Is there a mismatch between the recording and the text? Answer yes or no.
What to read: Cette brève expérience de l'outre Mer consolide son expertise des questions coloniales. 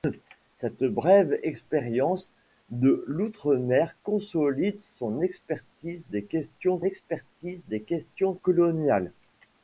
yes